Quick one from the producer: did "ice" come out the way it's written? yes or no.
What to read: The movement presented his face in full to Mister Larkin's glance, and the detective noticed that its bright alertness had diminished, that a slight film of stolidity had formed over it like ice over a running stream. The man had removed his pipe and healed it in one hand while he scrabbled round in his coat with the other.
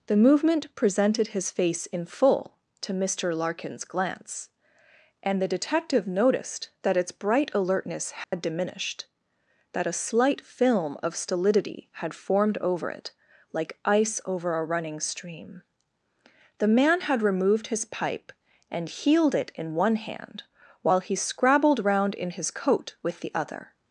yes